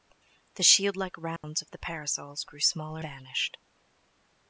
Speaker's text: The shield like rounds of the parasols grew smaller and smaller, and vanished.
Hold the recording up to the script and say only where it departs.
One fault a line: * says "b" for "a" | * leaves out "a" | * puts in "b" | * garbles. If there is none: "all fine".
* leaves out "and smaller and"